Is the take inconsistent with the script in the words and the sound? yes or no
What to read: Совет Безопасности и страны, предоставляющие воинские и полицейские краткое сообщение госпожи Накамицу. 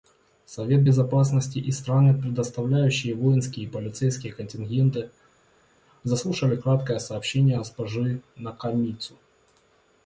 yes